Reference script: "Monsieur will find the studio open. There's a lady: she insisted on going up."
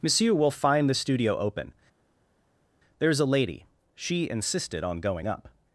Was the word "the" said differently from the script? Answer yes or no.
no